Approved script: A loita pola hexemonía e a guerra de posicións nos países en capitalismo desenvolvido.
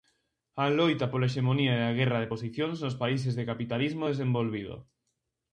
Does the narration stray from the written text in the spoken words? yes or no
yes